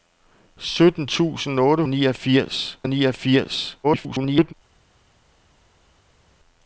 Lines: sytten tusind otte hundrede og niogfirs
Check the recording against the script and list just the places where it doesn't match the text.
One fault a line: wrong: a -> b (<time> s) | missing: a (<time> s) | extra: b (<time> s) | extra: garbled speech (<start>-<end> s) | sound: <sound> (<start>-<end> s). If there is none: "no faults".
wrong: hundrede -> niogfirs (1.9 s)
extra: garbled speech (3.8-4.5 s)